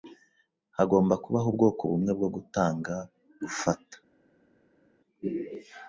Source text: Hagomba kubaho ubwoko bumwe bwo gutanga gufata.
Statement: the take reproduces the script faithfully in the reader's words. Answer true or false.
true